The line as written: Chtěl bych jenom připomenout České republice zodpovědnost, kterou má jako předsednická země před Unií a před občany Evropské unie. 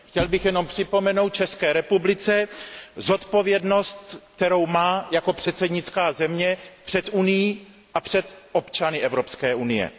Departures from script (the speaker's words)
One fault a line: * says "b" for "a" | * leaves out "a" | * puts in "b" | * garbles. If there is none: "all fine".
all fine